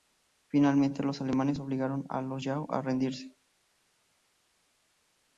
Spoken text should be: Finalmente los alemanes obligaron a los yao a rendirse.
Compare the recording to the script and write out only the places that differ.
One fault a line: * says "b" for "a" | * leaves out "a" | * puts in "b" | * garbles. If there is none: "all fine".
all fine